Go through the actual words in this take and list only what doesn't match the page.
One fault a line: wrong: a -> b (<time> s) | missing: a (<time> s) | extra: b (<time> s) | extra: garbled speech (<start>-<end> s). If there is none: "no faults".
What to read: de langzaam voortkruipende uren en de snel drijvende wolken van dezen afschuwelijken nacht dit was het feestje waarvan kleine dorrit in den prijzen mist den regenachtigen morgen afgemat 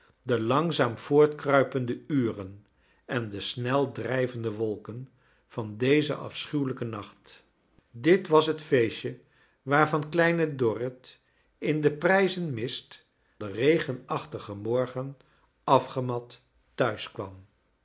no faults